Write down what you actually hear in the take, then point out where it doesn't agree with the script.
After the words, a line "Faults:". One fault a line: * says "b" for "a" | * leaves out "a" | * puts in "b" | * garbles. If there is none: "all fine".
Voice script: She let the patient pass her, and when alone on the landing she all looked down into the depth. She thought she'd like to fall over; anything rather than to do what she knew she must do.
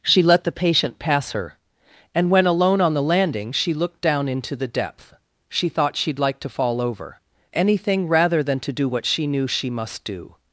She let the patient pass her, and when alone on the landing she looked down into the depth. She thought she'd like to fall over; anything rather than to do what she knew she must do.
Faults:
* leaves out "all"